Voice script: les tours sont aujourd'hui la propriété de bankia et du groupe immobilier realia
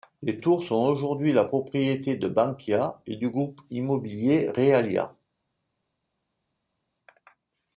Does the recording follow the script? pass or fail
pass